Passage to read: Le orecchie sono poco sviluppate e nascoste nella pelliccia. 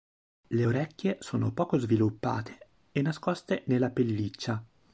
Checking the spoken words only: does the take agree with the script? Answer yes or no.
yes